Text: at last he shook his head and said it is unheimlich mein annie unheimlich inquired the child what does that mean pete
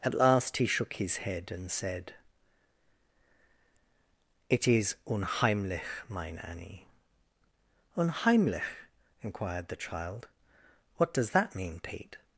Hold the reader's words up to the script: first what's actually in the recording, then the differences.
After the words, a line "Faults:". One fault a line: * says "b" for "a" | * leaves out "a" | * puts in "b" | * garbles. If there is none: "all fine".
at last he shook his head and said it is unheimlich mein annie unheimlich inquired the child what does that mean pete
Faults:
all fine